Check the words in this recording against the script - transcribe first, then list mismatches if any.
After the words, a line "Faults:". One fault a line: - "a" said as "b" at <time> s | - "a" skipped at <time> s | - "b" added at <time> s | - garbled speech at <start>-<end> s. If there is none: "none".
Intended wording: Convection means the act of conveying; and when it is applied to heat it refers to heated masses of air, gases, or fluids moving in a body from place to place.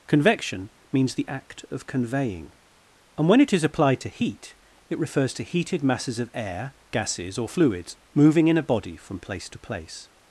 Convection means the act of conveying; and when it is applied to heat it refers to heated masses of air, gases, or fluids moving in a body from place to place.
Faults:
none